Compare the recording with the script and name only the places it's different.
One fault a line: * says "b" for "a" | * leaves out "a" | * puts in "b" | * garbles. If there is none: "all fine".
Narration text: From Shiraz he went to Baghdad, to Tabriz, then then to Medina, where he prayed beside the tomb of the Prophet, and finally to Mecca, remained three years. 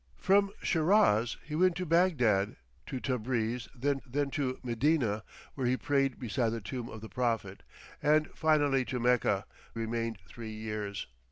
all fine